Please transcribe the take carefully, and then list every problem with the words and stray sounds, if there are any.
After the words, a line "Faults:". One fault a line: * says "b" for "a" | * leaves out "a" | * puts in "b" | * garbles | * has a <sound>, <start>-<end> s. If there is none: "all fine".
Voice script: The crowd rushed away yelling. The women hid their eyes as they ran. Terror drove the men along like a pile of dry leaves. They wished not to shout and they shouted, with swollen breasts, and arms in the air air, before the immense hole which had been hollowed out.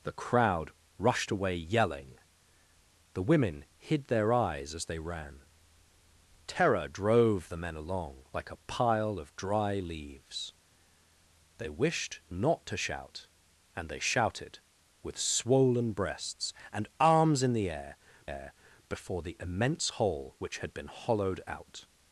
The crowd rushed away yelling. The women hid their eyes as they ran. Terror drove the men along like a pile of dry leaves. They wished not to shout and they shouted, with swollen breasts, and arms in the air air, before the immense hole which had been hollowed out.
Faults:
all fine